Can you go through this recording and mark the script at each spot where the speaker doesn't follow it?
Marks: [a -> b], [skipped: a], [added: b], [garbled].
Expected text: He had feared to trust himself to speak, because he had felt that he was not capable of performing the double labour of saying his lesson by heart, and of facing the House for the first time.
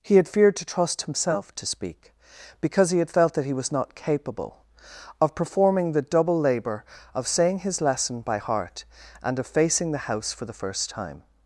He had feared to trust himself to speak, because he had felt that he was not capable of performing the double labour of saying his lesson by heart, and of facing the House for the first time.